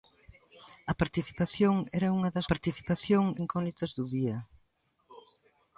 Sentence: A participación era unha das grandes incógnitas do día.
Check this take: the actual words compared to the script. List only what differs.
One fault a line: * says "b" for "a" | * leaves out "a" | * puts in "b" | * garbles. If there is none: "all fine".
* says "participación" for "grandes"